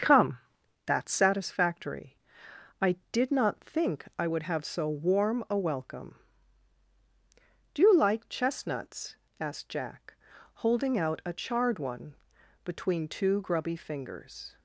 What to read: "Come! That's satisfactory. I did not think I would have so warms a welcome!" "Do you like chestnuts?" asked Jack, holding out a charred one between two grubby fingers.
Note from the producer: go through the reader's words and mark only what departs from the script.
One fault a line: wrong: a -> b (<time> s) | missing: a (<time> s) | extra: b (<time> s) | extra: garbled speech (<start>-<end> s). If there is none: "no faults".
wrong: warms -> warm (4.9 s)